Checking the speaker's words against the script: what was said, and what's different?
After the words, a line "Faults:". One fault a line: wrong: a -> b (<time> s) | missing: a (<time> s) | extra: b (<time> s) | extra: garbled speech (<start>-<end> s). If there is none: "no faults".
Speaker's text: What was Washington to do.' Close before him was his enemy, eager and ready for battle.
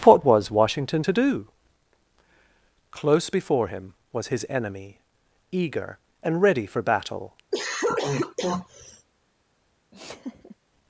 What was Washington to do.' Close before him was his enemy, eager and ready for battle.
Faults:
no faults